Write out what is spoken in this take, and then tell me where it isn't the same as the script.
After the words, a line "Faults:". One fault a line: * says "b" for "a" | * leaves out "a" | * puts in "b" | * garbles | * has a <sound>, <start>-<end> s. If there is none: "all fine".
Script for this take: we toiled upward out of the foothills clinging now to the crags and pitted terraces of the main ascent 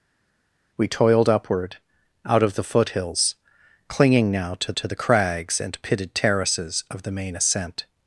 we toiled upward out of the foothills clinging now to to the crags and pitted terraces of the main ascent
Faults:
* puts in "to"